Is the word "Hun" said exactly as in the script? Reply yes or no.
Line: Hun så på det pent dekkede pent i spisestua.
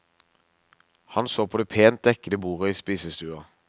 no